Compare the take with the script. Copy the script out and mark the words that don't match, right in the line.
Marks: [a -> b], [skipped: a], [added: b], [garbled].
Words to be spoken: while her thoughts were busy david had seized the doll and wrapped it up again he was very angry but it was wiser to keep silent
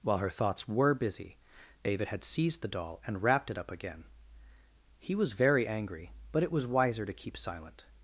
while her thoughts were busy david had seized the doll and wrapped it up again he was very angry but it was wiser to keep silent